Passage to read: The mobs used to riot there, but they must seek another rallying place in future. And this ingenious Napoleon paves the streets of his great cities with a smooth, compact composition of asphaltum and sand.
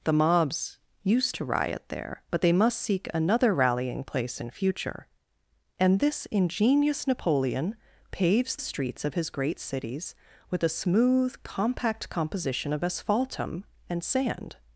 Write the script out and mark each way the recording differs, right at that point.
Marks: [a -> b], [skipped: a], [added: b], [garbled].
The mobs used to riot there, but they must seek another rallying place in future. And this ingenious Napoleon paves [skipped: the] streets of his great cities with a smooth, compact composition of asphaltum and sand.